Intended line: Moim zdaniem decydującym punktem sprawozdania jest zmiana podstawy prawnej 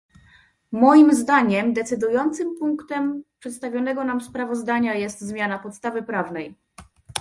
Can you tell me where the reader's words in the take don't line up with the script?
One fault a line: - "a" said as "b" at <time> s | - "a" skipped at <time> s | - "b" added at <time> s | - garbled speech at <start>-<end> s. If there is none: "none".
- "przedstawionego nam" added at 3.4 s